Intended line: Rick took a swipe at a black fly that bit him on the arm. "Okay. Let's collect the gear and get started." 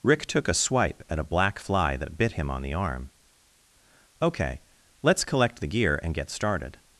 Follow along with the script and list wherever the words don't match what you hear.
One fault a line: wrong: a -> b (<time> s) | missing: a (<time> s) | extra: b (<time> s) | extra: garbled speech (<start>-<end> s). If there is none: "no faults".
no faults